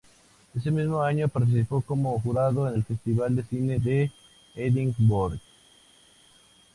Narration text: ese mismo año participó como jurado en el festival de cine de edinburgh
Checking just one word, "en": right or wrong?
right